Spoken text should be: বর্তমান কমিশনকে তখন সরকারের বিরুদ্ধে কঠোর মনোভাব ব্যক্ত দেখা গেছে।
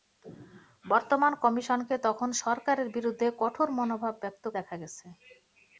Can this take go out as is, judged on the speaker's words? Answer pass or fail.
pass